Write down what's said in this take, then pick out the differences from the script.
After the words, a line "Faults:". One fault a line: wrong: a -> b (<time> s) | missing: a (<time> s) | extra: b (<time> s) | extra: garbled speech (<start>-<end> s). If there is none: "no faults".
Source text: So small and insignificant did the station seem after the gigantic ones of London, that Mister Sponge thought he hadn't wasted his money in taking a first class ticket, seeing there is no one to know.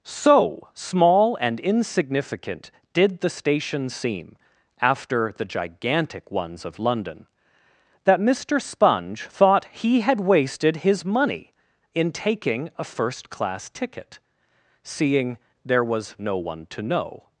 So small and insignificant did the station seem after the gigantic ones of London, that Mister Sponge thought he had wasted his money in taking a first class ticket, seeing there was no one to know.
Faults:
wrong: hadn't -> had (10.0 s)
wrong: is -> was (15.8 s)